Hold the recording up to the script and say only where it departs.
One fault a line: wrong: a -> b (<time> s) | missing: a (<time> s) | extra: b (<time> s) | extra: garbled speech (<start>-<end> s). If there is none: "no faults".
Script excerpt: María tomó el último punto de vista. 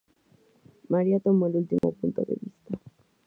no faults